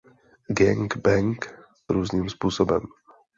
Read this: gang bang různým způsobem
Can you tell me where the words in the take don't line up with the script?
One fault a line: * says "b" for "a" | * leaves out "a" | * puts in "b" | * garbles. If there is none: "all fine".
all fine